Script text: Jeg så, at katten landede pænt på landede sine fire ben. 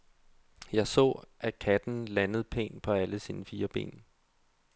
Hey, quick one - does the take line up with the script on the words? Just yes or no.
no